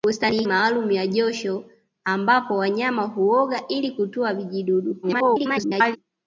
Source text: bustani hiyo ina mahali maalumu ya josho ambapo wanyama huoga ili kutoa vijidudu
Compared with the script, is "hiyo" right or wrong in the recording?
wrong